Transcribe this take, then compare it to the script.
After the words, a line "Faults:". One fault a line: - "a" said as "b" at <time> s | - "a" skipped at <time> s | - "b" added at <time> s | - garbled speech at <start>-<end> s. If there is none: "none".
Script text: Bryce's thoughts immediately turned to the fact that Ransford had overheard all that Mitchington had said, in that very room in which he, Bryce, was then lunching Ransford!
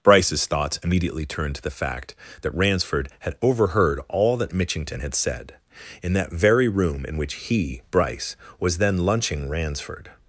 Bryce's thoughts immediately turned to the fact that Ransford had overheard all that Mitchington had said, in that very room in which he, Bryce, was then lunching Ransford!
Faults:
none